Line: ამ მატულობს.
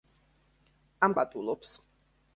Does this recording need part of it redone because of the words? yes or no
no